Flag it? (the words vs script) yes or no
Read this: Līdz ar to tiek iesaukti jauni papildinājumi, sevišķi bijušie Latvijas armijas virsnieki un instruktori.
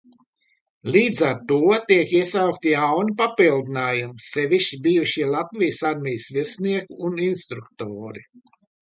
no